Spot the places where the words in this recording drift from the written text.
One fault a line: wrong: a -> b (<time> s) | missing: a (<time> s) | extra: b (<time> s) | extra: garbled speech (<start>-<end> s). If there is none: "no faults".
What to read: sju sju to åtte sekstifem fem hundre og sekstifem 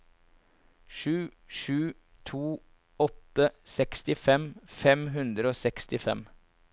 no faults